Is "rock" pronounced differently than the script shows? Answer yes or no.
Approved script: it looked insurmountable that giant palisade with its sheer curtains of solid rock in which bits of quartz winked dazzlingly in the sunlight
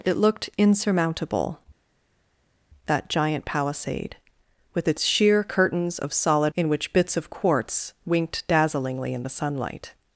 yes